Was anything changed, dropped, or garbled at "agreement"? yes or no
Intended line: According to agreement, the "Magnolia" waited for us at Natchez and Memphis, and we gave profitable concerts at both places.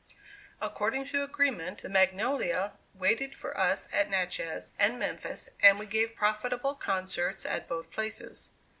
no